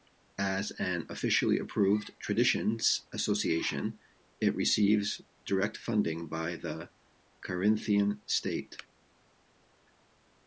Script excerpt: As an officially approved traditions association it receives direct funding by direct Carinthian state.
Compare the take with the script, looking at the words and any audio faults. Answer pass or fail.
fail